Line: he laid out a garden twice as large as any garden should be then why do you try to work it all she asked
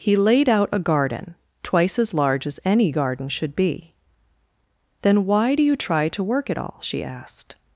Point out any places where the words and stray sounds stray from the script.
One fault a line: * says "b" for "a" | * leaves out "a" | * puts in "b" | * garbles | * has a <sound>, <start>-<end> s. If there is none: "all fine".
all fine